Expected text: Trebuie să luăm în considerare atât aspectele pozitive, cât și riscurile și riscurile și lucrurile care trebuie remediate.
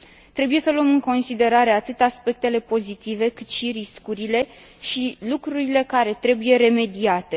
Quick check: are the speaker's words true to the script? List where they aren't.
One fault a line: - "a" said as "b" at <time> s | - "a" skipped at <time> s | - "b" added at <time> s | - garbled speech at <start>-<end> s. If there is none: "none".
- "riscurile și" skipped at 5.2 s